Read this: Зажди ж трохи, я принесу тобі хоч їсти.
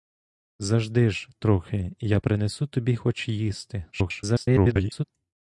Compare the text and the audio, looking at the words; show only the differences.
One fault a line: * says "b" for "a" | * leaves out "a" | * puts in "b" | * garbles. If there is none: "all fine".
* garbles